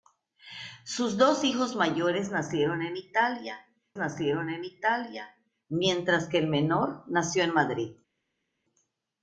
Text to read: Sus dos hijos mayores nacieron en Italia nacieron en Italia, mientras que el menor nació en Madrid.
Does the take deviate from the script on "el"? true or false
false